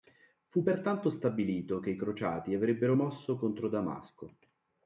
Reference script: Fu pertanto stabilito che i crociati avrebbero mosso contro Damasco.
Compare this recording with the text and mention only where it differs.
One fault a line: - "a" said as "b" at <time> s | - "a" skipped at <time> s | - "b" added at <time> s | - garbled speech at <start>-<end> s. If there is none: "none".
none